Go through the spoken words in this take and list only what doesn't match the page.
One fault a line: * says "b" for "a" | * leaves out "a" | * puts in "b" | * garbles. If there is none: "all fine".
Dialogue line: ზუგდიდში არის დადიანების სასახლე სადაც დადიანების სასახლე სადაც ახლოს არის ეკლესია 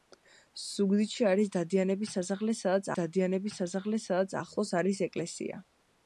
all fine